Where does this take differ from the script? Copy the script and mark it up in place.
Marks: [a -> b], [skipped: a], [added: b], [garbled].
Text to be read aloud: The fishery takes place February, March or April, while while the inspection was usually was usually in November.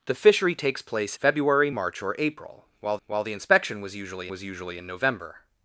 The fishery takes place February, March or April, while while the inspection was usually was usually in November.